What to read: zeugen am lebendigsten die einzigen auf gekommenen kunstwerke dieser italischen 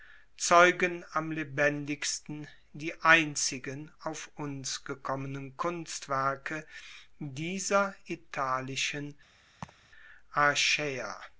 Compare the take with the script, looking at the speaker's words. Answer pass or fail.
fail